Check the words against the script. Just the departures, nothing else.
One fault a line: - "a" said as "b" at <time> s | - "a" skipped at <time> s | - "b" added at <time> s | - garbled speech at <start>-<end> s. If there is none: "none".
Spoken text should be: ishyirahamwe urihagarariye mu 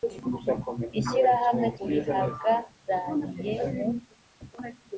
none